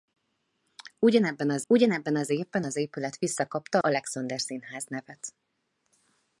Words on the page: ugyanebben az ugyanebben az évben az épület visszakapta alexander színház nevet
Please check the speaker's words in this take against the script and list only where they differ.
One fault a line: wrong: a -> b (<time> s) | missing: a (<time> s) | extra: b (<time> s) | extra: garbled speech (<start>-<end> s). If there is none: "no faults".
no faults